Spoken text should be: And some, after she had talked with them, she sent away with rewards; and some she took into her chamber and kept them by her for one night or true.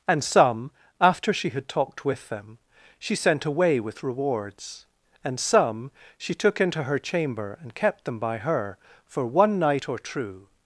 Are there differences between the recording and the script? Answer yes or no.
no